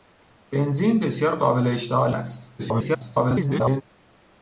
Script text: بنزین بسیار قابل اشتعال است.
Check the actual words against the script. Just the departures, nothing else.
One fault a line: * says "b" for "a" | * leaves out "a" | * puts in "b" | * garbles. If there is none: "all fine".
* garbles